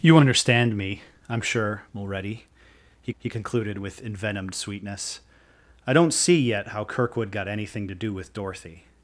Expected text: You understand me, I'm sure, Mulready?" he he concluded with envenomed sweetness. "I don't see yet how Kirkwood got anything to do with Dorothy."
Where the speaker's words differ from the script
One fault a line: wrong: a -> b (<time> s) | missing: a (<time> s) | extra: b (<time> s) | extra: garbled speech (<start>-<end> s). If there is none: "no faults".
no faults